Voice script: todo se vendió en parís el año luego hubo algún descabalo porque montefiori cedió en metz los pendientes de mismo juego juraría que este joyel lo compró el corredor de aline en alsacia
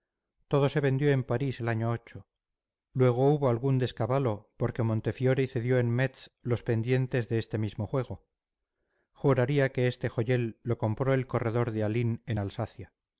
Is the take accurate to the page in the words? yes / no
no